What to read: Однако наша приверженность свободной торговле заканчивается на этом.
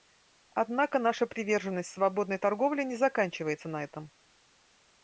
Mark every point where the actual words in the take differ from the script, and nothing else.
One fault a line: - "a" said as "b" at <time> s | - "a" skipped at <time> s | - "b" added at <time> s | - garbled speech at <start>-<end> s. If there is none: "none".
- "не" added at 2.9 s